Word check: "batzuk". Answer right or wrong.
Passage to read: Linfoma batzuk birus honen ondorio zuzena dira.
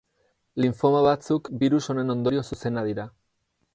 right